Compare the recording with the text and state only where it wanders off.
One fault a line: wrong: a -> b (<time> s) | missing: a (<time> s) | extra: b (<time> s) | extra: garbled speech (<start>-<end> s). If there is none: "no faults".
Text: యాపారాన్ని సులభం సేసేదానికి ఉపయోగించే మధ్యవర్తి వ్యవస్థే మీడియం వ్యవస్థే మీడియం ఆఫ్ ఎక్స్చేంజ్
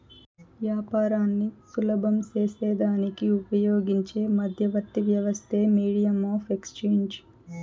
missing: వ్యవస్థే మీడియం (6.2 s)